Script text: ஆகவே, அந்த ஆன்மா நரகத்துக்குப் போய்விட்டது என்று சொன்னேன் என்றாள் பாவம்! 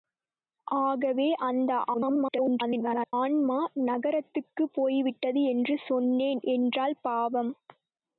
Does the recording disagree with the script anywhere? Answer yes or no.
yes